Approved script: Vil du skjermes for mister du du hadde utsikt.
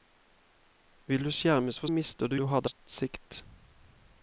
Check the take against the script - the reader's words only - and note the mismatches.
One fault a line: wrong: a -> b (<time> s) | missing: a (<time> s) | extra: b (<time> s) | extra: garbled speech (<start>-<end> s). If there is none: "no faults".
no faults